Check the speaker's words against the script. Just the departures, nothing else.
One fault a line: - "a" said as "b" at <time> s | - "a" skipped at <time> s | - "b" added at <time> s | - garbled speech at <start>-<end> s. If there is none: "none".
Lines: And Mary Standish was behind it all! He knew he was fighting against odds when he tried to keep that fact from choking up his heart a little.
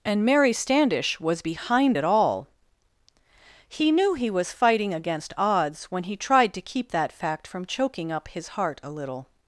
none